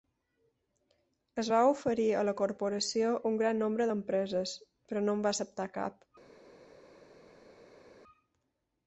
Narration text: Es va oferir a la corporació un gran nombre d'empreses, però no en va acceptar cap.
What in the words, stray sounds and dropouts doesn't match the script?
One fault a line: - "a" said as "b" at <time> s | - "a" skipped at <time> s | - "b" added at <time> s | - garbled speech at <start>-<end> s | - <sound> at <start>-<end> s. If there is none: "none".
none